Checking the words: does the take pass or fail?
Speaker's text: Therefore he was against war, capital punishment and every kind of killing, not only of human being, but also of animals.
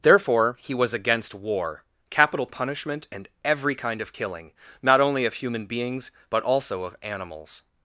fail